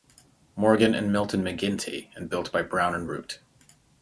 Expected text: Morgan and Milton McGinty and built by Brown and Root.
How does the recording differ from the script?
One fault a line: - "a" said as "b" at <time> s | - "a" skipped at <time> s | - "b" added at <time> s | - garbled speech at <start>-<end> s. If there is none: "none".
none